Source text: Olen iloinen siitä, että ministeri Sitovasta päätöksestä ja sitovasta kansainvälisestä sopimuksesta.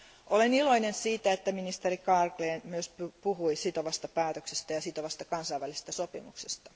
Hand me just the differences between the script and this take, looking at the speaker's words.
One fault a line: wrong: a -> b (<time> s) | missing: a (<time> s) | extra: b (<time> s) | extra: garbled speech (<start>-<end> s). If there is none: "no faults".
extra: Carlgren myös puhui (2.0 s)